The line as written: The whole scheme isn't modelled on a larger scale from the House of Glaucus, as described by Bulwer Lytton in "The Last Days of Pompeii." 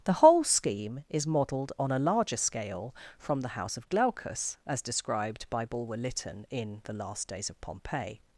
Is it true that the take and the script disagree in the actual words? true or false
true